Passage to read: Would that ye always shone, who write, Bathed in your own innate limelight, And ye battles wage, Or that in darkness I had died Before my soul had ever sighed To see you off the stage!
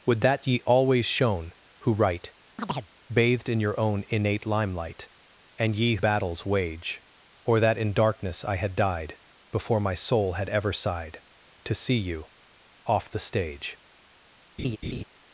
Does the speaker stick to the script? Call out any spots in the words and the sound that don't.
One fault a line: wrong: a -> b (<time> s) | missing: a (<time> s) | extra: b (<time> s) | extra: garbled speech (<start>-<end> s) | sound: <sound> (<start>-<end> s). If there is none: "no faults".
sound: chirp (2.6-2.9 s)
sound: laugh (14.6-15.0 s)